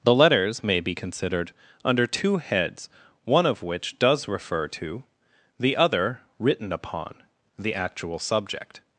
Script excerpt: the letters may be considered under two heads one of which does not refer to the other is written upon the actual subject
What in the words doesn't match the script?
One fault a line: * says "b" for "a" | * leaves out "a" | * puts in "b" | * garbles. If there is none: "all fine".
* leaves out "not"
* leaves out "is"